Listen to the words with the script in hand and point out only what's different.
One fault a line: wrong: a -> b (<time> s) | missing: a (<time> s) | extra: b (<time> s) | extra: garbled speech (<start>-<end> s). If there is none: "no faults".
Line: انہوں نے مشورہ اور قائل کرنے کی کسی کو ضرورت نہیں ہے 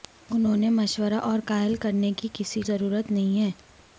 missing: کو (2.6 s)